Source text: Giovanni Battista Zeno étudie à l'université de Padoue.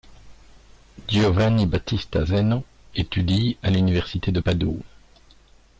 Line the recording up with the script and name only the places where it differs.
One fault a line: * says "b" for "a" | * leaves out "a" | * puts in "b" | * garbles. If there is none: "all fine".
all fine